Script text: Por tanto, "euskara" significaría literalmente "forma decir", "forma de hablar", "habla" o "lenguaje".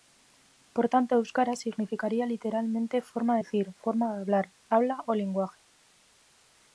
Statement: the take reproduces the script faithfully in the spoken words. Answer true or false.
true